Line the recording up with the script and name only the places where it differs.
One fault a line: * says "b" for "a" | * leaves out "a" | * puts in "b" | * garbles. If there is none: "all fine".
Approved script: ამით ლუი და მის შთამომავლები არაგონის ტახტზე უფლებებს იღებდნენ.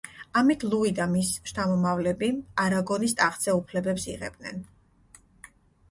all fine